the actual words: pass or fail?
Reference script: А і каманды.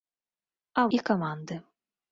pass